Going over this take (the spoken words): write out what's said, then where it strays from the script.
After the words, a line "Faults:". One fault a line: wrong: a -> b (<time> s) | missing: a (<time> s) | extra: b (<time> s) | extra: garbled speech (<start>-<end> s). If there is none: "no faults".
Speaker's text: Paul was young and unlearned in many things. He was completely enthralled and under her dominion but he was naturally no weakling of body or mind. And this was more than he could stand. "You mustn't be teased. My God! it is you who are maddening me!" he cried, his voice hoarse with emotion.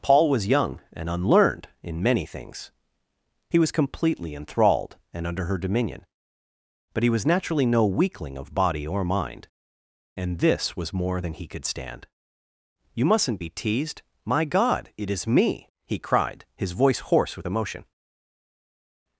Paul was young and unlearned in many things. He was completely enthralled and under her dominion but he was naturally no weakling of body or mind. And this was more than he could stand. "You mustn't be teased. My God! it is me!" he cried, his voice hoarse with emotion.
Faults:
missing: you who are maddening (15.3 s)